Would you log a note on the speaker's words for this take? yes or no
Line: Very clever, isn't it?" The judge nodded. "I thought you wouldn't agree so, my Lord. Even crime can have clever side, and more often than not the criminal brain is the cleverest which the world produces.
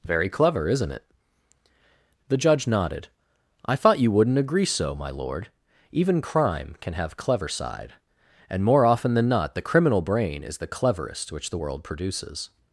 no